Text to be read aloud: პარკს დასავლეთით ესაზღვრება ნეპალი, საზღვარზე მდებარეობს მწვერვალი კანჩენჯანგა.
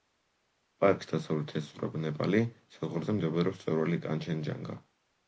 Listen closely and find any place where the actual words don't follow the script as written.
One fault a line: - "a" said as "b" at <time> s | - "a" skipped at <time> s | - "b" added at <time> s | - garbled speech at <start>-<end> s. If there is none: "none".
none